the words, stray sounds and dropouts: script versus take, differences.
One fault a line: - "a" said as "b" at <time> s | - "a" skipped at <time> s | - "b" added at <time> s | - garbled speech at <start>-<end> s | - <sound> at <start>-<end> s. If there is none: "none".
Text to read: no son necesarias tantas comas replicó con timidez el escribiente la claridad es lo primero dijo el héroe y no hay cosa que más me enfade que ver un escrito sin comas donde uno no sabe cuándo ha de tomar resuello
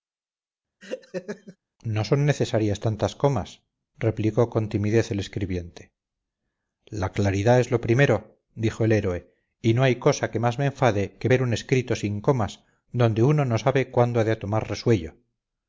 - laugh at 0.8-1.6 s